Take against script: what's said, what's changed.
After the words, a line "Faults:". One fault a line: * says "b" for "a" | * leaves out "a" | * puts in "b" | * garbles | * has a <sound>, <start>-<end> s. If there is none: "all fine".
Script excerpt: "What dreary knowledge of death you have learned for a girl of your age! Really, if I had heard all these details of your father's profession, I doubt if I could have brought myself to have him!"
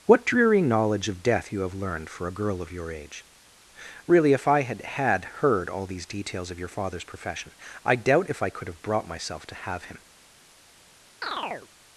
"What dreary knowledge of death you have learned for a girl of your age! Really, if I had had heard all these details of your father's profession, I doubt if I could have brought myself to have him!"
Faults:
* puts in "had"
* has a chirp, 11.2-11.7 s